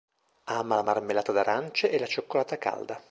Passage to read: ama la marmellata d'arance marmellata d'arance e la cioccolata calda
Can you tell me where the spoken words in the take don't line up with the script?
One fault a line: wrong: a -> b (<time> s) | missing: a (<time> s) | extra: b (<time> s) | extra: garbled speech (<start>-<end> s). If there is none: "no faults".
missing: marmellata d'arance (1.9 s)